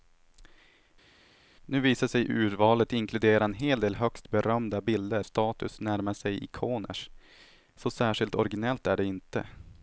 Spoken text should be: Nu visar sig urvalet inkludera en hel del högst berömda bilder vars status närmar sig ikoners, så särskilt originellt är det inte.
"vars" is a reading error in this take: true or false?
true